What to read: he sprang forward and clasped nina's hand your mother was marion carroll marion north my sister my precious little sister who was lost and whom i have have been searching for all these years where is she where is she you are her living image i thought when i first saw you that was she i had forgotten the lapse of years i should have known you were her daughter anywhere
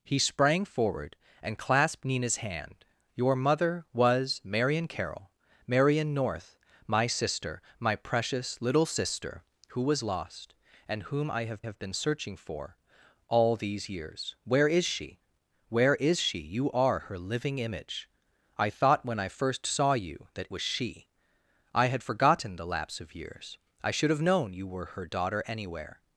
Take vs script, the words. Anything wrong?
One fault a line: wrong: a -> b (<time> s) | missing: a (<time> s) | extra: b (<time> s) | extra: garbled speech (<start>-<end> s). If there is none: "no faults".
no faults